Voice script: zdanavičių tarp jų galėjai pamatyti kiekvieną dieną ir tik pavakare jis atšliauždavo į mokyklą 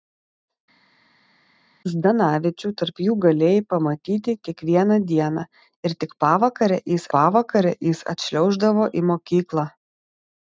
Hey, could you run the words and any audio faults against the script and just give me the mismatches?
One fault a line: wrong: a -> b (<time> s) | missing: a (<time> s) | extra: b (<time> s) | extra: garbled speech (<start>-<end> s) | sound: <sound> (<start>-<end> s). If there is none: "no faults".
extra: pavakare jis (7.2 s)